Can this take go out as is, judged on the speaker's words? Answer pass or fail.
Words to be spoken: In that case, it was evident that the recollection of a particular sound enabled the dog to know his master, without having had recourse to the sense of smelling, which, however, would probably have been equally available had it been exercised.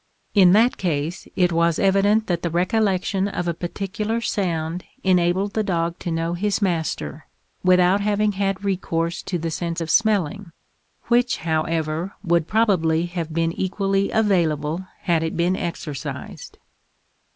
pass